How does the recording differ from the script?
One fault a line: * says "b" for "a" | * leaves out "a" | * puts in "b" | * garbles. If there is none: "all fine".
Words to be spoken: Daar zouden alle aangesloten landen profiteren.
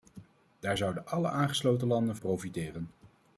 all fine